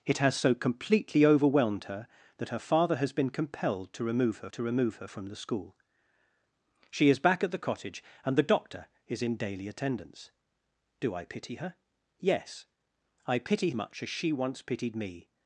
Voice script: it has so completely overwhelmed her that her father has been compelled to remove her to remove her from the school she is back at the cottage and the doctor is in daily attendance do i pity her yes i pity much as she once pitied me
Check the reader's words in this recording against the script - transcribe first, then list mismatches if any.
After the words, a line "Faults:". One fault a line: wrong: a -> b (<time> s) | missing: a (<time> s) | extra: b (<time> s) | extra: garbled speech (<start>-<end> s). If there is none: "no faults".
it has so completely overwhelmed her that her father has been compelled to remove her to remove her from the school she is back at the cottage and the doctor is in daily attendance do i pity her yes i pity much as she once pitied me
Faults:
no faults